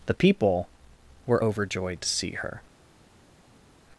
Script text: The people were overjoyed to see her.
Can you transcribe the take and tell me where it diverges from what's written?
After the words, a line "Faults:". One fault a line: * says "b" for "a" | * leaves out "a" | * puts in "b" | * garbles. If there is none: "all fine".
The people were overjoyed to see her.
Faults:
all fine